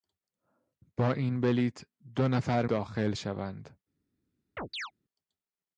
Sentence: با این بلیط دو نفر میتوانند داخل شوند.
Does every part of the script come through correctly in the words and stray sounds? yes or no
no